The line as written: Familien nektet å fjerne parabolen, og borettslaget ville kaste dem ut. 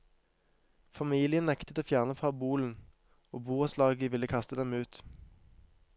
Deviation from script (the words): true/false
false